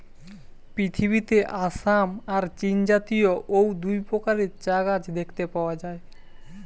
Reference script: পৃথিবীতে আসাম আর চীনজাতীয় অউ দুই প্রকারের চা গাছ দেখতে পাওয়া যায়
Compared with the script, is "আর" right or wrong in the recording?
right